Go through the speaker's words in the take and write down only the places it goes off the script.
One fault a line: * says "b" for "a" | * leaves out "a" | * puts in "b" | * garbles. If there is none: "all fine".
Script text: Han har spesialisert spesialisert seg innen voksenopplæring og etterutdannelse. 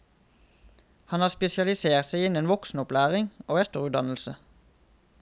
* leaves out "spesialisert"